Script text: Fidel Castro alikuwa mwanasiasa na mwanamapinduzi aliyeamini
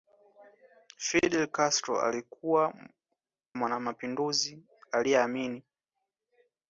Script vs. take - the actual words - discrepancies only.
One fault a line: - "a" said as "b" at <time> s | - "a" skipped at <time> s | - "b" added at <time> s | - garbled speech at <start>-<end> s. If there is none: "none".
- "mwanasiasa na" skipped at 2.7 s